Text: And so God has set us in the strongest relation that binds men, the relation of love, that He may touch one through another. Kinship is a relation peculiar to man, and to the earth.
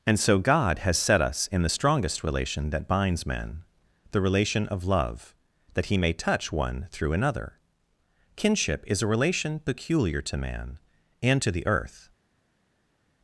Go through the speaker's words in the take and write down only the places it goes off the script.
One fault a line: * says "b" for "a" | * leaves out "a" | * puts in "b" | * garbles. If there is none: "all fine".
all fine